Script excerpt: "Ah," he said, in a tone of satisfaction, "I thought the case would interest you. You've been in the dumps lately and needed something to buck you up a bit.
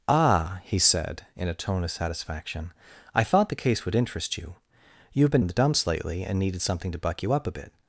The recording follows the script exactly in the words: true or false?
true